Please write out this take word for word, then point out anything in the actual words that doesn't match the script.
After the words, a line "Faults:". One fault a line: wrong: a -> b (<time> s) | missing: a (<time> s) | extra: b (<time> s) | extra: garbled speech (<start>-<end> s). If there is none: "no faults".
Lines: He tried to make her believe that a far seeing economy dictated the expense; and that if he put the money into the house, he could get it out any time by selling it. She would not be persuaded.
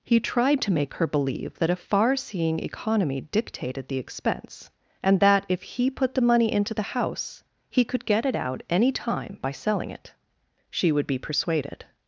He tried to make her believe that a far seeing economy dictated the expense; and that if he put the money into the house, he could get it out any time by selling it. She would be persuaded.
Faults:
missing: not (11.1 s)